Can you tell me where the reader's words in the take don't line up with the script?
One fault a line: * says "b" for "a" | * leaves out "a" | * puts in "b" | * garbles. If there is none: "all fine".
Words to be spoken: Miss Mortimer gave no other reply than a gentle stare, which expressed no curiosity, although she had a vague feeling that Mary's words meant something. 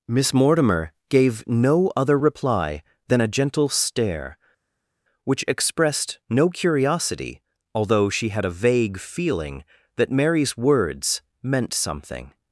all fine